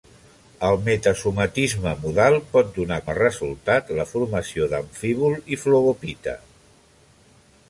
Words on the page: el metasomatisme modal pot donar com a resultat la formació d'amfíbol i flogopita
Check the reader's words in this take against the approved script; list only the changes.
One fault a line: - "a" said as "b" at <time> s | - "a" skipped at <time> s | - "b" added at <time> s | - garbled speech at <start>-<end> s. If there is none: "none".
- "com" skipped at 3.0 s